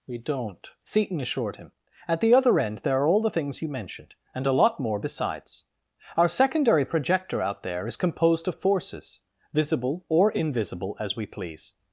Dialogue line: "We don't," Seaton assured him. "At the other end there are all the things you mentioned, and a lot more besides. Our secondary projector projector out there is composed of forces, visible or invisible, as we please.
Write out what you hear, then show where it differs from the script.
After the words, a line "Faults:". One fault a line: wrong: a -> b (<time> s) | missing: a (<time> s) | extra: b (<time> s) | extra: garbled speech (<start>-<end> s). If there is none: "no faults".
"We don't," Seaton assured him. "At the other end there are all the things you mentioned, and a lot more besides. Our secondary projector out there is composed of forces, visible or invisible, as we please.
Faults:
missing: projector (7.4 s)